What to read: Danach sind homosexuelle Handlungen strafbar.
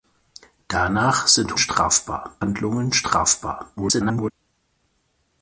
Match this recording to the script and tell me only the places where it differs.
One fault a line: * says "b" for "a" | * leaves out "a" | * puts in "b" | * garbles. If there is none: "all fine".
* says "strafbar" for "homosexuelle"
* garbles